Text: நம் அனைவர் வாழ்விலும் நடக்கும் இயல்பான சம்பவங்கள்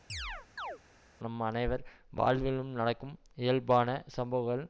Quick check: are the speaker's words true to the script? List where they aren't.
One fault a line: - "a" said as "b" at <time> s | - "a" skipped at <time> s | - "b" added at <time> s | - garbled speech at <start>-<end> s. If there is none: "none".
none